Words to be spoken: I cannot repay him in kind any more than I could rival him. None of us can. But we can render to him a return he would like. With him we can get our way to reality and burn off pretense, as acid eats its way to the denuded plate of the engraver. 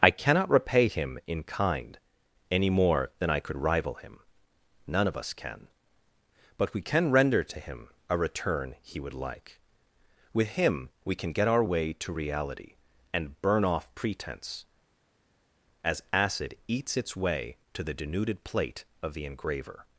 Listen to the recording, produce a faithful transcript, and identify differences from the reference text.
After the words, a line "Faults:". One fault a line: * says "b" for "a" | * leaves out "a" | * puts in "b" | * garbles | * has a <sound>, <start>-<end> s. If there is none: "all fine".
I cannot repay him in kind any more than I could rival him. None of us can. But we can render to him a return he would like. With him we can get our way to reality and burn off pretense, as acid eats its way to the denuded plate of the engraver.
Faults:
all fine